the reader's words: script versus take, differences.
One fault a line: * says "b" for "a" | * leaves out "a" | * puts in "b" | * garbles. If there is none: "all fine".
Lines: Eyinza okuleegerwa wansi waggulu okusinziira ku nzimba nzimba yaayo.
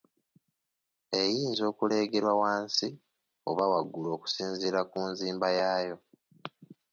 * puts in "oba"
* leaves out "nzimba"